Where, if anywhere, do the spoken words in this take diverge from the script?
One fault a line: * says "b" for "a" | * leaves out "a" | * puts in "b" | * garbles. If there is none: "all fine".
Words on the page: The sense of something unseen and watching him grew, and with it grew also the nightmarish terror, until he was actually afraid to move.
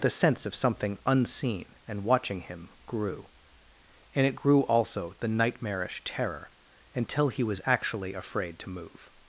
* leaves out "with"